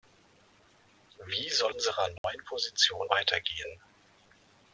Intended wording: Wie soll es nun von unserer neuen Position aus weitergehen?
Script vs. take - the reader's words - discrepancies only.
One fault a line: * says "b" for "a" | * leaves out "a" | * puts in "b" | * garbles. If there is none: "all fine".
* leaves out "es nun von"
* leaves out "aus"